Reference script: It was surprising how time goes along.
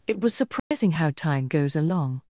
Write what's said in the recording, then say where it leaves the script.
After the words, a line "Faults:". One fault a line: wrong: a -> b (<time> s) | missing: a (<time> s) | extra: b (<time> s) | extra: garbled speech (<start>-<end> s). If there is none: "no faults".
It was surprising how time goes along.
Faults:
no faults